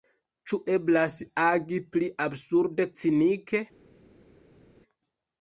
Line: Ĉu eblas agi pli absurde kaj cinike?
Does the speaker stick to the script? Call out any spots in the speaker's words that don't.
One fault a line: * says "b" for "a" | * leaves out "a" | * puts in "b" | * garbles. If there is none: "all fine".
* leaves out "kaj"